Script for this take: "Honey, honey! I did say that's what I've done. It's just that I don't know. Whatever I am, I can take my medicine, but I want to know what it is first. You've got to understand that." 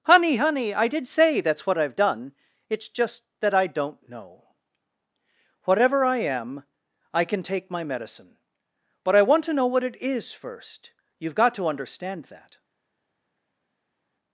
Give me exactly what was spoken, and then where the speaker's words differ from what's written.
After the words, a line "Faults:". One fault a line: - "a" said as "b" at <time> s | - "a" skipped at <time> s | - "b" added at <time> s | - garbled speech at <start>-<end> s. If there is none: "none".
"Honey, honey! I did say that's what I've done. It's just that I don't know. Whatever I am, I can take my medicine, but I want to know what it is first. You've got to understand that."
Faults:
none